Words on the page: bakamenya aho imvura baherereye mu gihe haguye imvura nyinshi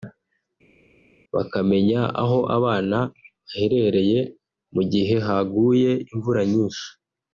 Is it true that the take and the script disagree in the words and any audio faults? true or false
true